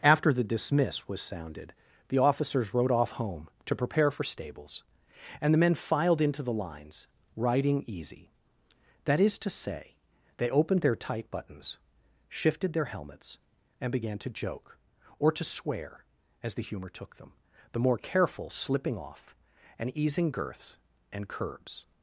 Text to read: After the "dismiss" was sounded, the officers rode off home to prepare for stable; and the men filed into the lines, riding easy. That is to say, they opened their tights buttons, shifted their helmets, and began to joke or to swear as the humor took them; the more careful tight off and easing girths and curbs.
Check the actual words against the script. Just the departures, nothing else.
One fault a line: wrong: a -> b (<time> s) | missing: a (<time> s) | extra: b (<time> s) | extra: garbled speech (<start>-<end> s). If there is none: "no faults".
wrong: stable -> stables (4.2 s)
wrong: tights -> tight (10.9 s)
wrong: tight -> slipping (18.5 s)